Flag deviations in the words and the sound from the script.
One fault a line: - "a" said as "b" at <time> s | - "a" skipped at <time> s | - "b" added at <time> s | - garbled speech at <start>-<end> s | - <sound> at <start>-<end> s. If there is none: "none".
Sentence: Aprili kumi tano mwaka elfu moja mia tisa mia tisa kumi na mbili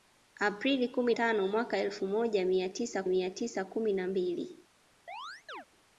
- chirp at 5.1-5.7 s